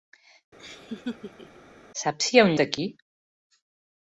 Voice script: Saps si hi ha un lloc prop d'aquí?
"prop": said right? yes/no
no